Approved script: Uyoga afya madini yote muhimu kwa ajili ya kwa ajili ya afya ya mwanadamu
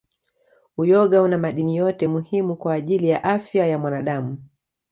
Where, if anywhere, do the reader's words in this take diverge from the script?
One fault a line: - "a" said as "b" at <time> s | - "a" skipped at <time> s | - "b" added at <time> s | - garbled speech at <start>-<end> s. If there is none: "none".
- "afya" said as "una" at 1.2 s
- "kwa ajili ya" skipped at 3.3 s